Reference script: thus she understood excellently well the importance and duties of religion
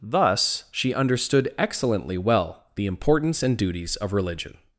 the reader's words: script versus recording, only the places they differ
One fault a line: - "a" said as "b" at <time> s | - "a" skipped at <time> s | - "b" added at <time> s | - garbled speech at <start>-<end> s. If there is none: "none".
none